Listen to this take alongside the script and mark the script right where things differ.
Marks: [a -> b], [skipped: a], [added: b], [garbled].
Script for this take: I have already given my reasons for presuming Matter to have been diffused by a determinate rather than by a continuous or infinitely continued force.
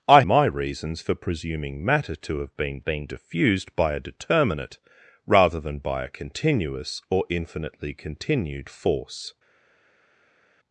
I [skipped: have already given] my reasons for presuming Matter to have been [added: been] diffused by a determinate rather than by a continuous or infinitely continued force.